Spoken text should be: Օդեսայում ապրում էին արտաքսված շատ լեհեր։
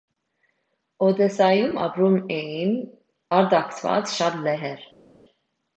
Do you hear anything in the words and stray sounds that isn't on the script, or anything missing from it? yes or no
no